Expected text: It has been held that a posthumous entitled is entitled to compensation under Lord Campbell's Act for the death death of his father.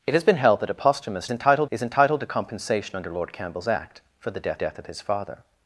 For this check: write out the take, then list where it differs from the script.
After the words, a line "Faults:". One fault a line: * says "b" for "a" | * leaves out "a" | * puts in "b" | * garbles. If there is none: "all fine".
It has been held that a posthumous entitled is entitled to compensation under Lord Campbell's Act for the death death of his father.
Faults:
all fine